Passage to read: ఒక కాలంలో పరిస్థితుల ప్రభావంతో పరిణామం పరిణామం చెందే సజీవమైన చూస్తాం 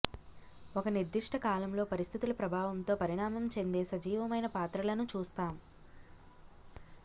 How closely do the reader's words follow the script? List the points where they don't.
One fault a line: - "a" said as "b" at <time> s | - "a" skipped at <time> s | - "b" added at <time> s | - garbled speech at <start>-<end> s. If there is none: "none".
- "నిర్దిష్ట" added at 0.9 s
- "పరిణామం" skipped at 3.5 s
- "పాత్రలను" added at 4.6 s